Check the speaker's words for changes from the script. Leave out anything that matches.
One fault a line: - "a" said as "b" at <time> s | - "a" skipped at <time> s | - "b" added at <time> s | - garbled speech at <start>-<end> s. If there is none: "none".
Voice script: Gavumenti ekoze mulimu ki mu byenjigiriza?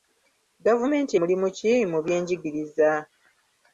- "ekoze" skipped at 1.1 s